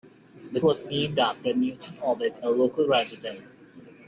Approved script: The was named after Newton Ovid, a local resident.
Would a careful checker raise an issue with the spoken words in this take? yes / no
no